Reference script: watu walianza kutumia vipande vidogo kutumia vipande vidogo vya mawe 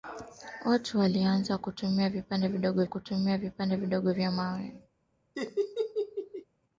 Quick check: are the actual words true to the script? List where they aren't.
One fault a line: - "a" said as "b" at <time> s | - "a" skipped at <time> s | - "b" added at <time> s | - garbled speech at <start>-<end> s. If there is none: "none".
none